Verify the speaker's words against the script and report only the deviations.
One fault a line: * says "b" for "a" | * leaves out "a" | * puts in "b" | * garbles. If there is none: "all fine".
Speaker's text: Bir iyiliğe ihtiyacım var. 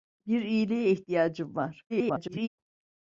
* garbles